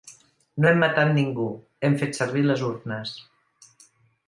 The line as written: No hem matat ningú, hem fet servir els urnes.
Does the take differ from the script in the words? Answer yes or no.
yes